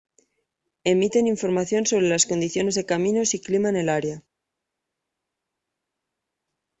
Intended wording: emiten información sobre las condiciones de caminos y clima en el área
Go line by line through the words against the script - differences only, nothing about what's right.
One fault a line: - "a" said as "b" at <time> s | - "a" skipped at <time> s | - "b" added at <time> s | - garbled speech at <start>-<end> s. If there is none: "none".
none